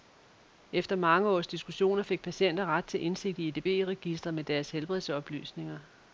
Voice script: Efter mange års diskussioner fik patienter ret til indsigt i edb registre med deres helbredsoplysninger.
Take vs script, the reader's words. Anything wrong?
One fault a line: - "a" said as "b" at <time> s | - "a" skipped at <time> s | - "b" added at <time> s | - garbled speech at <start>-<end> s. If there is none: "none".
none